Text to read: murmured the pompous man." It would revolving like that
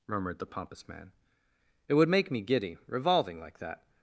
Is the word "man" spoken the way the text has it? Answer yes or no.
yes